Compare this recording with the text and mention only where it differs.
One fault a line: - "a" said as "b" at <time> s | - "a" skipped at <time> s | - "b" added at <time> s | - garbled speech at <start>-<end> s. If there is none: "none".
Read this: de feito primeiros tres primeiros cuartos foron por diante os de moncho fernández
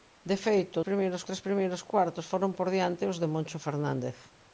none